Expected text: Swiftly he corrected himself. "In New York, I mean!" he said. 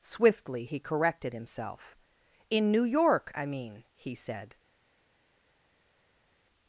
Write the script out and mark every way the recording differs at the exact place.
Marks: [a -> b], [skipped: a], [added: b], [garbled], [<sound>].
Swiftly he corrected himself. "In New York, I mean!" he said.